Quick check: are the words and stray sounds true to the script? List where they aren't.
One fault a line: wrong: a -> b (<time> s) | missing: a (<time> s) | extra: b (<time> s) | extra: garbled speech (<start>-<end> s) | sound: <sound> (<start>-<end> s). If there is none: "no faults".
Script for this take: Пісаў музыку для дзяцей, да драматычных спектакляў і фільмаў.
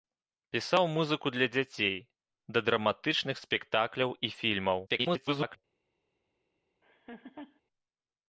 extra: garbled speech (4.9-5.6 s)
sound: laugh (6.8-7.6 s)